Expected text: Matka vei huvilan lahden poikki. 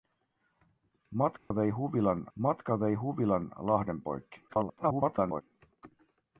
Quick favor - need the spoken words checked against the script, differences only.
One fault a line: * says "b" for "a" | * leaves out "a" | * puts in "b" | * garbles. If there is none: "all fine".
* puts in "matka vei huvilan"
* garbles